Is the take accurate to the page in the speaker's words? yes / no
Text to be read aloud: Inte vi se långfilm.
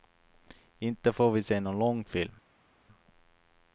no